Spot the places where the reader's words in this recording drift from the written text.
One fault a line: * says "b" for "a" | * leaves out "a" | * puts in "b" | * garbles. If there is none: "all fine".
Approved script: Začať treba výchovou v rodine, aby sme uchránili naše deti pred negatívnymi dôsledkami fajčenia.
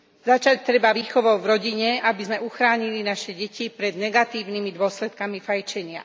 all fine